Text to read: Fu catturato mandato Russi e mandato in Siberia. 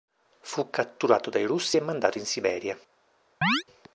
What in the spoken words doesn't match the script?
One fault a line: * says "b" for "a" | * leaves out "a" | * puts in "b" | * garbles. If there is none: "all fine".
* says "dai" for "mandato"